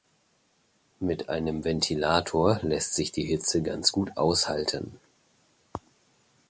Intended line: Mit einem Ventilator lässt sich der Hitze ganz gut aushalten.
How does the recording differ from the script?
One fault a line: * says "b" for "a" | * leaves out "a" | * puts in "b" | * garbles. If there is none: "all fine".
* says "die" for "der"